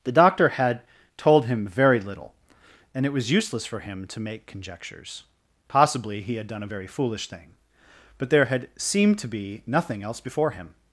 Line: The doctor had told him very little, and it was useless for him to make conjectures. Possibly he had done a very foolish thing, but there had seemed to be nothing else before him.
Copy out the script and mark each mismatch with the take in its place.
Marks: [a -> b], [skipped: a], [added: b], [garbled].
The doctor had told him very little, and it was useless for him to make conjectures. Possibly he had done a very foolish thing, but there had seemed to be nothing else before him.